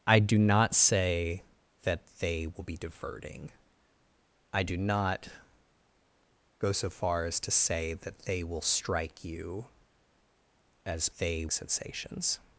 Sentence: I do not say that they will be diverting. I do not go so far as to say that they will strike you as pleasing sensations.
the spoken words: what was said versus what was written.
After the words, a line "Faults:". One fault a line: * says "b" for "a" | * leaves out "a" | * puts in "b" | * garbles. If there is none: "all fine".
I do not say that they will be diverting. I do not go so far as to say that they will strike you as they sensations.
Faults:
* says "they" for "pleasing"